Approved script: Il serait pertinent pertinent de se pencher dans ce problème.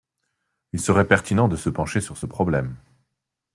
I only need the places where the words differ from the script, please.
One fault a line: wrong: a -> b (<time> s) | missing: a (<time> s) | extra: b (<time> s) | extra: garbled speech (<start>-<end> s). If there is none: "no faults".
missing: pertinent (1.5 s)
wrong: dans -> sur (2.0 s)